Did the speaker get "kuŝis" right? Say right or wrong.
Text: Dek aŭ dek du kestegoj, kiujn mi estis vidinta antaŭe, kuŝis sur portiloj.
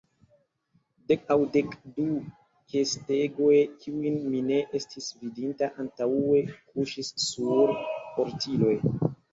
right